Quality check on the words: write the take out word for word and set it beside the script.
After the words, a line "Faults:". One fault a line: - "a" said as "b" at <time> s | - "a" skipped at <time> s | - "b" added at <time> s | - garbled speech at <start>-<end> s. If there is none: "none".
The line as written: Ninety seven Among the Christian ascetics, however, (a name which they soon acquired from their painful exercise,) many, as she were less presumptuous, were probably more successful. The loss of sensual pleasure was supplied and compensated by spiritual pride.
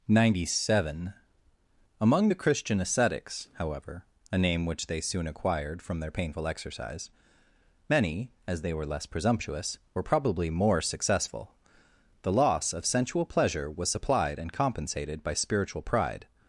Ninety seven Among the Christian ascetics, however, (a name which they soon acquired from their painful exercise,) many, as they were less presumptuous, were probably more successful. The loss of sensual pleasure was supplied and compensated by spiritual pride.
Faults:
- "she" said as "they" at 8.6 s